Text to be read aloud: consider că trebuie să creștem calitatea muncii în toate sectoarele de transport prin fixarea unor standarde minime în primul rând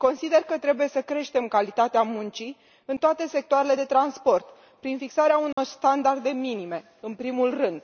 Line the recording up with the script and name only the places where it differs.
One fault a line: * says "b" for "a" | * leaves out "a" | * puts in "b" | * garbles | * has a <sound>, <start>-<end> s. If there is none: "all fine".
* has a dropout, 5.5-5.6 s